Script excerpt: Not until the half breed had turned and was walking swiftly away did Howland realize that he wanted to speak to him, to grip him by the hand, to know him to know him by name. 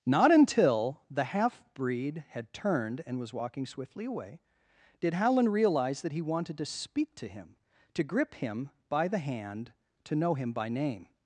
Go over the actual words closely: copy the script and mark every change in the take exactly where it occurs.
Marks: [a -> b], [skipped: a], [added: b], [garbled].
Not until the half breed had turned and was walking swiftly away did Howland realize that he wanted to speak to him, to grip him by the hand, to know him [skipped: to know him] by name.